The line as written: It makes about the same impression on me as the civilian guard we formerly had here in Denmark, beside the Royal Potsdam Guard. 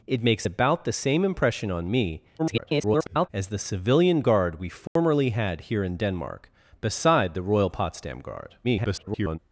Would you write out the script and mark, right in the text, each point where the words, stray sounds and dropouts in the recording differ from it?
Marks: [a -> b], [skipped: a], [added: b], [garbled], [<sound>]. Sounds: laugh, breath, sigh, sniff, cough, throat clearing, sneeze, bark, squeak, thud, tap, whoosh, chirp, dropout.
It makes about the same impression on me [garbled] as the civilian guard we formerly [dropout] had here in Denmark, beside the Royal Potsdam Guard. [garbled]